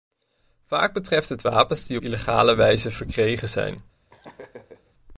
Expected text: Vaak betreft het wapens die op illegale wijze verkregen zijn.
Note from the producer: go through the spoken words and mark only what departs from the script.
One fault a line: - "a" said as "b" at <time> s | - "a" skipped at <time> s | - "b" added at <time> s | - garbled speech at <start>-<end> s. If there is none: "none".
- "op" skipped at 2.0 s